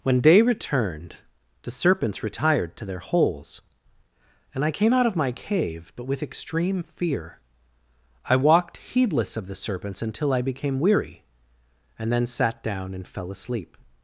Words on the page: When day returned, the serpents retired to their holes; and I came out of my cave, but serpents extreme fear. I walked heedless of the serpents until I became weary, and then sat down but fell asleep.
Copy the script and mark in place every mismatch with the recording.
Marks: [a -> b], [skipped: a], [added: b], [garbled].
When day returned, the serpents retired to their holes; and I came out of my cave, but [serpents -> with] extreme fear. I walked heedless of the serpents until I became weary, and then sat down [but -> and] fell asleep.